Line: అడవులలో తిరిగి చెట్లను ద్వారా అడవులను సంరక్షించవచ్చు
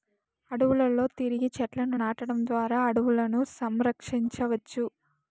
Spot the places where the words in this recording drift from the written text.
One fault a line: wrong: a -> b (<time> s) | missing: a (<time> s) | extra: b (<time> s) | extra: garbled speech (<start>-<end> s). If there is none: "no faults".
extra: నాటడం (1.9 s)